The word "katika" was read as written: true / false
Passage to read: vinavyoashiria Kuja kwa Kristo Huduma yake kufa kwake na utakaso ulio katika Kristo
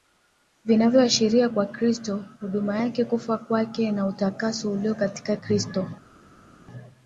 true